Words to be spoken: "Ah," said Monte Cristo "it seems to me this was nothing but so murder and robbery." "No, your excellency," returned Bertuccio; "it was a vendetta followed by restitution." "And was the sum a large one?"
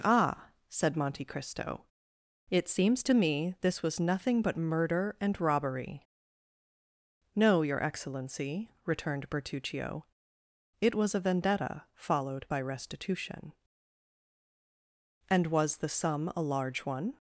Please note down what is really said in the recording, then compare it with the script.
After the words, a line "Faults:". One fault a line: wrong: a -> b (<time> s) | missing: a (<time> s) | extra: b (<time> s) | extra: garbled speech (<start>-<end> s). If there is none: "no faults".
"Ah," said Monte Cristo "it seems to me this was nothing but murder and robbery." "No, your excellency," returned Bertuccio; "it was a vendetta followed by restitution." "And was the sum a large one?"
Faults:
missing: so (4.6 s)